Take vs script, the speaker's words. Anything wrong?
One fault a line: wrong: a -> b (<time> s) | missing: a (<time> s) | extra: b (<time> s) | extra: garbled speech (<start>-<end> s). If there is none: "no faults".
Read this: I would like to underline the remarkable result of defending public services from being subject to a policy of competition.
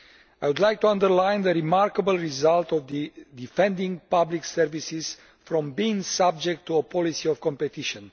no faults